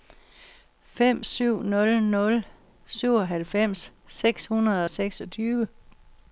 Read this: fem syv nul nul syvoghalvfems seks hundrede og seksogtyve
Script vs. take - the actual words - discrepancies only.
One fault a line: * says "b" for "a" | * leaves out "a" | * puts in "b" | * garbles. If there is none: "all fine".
all fine